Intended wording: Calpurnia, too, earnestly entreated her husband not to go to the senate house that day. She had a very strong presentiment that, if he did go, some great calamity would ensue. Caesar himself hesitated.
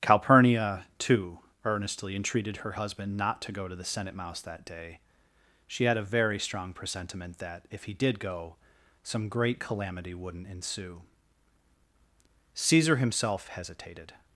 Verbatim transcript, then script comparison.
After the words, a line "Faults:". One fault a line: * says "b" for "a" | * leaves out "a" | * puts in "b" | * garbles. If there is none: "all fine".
Calpurnia, too, earnestly entreated her husband not to go to the senate mouse that day. She had a very strong presentiment that, if he did go, some great calamity wouldn't ensue. Caesar himself hesitated.
Faults:
* says "mouse" for "house"
* says "wouldn't" for "would"